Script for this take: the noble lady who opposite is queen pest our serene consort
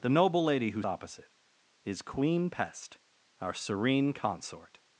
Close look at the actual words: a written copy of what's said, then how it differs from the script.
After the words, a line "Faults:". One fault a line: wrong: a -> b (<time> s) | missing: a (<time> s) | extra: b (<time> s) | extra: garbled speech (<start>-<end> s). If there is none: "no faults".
the noble lady who opposite is queen pest our serene consort
Faults:
no faults